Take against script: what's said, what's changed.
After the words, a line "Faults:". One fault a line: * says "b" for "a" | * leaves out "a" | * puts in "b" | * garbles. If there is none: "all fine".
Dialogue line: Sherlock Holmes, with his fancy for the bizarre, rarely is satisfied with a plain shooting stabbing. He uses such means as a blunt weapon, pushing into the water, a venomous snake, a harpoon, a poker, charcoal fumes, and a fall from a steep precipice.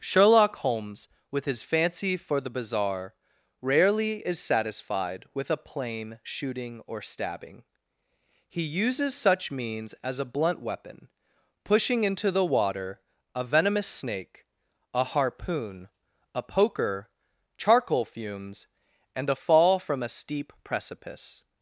Sherlock Holmes, with his fancy for the bizarre, rarely is satisfied with a plain shooting or stabbing. He uses such means as a blunt weapon, pushing into the water, a venomous snake, a harpoon, a poker, charcoal fumes, and a fall from a steep precipice.
Faults:
* puts in "or"